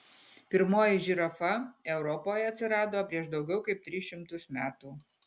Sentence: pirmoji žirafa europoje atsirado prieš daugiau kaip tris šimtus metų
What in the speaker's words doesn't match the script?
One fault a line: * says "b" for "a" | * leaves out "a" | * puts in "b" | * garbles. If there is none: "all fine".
all fine